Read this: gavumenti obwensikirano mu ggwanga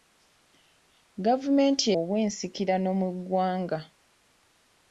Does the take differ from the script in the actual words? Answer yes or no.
no